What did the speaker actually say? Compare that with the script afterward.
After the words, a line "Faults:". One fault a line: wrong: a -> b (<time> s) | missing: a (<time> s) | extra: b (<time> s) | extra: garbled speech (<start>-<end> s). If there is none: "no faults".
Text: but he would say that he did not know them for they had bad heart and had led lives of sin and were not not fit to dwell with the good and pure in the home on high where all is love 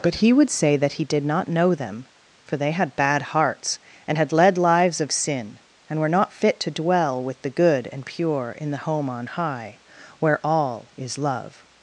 but he would say that he did not know them for they had bad hearts and had led lives of sin and were not fit to dwell with the good and pure in the home on high where all is love
Faults:
wrong: heart -> hearts (3.2 s)
missing: not (6.3 s)